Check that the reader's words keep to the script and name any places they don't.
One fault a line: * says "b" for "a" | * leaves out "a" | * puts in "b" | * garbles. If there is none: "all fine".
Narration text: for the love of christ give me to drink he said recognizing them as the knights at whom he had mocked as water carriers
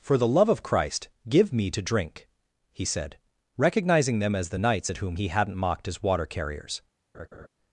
* says "hadn't" for "had"